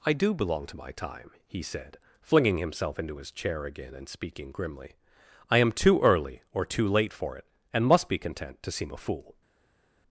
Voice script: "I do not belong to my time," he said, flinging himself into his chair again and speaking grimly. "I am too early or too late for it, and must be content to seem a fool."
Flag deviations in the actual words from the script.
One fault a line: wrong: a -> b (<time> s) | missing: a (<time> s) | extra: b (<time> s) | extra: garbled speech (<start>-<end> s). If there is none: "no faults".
missing: not (0.3 s)